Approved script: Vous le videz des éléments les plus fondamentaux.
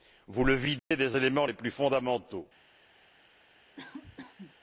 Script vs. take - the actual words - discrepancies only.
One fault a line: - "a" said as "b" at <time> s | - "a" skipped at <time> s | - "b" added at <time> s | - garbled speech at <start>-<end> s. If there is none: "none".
none